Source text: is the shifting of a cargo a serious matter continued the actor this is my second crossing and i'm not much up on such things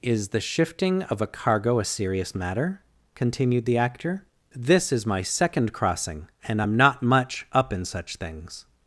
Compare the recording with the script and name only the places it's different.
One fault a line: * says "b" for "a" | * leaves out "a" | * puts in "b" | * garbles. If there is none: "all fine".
* says "in" for "on"